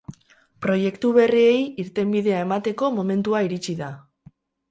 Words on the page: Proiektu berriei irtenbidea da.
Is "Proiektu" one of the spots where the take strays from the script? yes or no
no